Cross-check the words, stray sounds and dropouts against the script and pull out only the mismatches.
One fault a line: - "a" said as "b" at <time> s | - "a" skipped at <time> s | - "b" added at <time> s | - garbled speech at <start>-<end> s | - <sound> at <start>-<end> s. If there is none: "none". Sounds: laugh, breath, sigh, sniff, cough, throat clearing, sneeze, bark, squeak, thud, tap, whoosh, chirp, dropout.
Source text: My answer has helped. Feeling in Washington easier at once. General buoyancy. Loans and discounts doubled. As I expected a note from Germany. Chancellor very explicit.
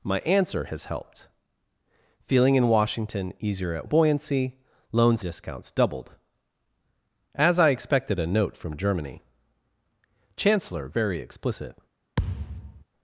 - "once General" skipped at 3.9 s
- "and" skipped at 5.2 s
- thud at 12.2-12.8 s